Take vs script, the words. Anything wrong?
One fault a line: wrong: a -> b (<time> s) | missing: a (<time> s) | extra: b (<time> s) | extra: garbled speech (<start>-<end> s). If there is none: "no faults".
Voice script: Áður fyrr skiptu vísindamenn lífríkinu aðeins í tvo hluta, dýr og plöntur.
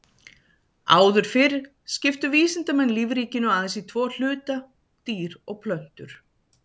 no faults